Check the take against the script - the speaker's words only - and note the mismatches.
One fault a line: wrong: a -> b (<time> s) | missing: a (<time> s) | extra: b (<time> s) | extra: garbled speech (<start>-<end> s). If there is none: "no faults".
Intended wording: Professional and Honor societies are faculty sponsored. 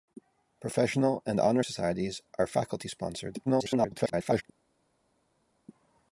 extra: garbled speech (3.5-4.4 s)